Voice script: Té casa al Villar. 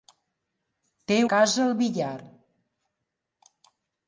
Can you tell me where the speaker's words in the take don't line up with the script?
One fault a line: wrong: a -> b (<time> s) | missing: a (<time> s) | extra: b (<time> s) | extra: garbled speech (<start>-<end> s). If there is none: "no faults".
no faults